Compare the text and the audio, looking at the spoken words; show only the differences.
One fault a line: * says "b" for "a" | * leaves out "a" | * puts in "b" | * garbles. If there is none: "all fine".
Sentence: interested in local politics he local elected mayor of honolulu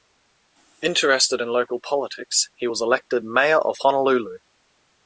* says "was" for "local"